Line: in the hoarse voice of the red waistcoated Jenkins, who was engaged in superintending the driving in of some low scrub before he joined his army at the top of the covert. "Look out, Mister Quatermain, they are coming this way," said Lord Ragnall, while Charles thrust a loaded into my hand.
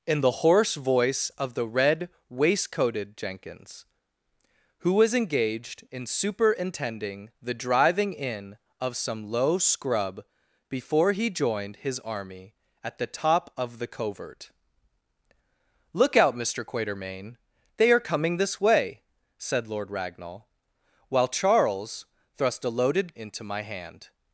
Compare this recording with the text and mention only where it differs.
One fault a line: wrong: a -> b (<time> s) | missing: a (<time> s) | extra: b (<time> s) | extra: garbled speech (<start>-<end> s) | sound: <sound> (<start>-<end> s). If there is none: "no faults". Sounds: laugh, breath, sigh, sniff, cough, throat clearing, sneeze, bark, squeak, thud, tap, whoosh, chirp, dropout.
no faults